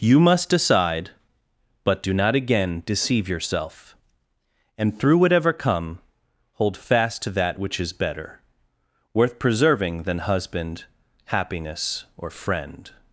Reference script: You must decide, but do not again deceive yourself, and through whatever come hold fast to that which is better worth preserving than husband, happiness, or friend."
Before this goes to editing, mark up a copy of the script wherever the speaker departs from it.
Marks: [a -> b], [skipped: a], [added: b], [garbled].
You must decide, but do not again deceive yourself, and through whatever come hold fast to that which is better worth preserving than husband, happiness, or friend."